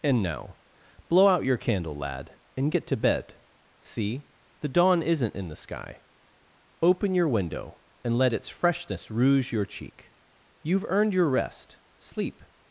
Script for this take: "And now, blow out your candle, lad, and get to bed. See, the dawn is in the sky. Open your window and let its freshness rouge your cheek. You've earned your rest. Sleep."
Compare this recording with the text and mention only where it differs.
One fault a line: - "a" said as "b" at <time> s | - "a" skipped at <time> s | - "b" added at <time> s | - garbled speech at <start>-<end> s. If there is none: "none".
- "is" said as "isn't" at 5.0 s